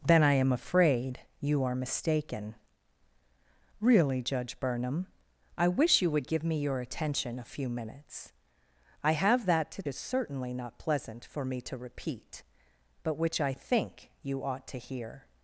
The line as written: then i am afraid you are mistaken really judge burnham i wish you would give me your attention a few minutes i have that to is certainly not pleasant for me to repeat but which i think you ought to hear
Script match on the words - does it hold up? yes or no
yes